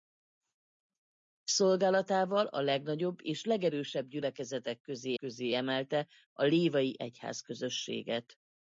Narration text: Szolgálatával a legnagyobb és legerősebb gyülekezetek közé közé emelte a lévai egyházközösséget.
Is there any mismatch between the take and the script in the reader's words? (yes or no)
no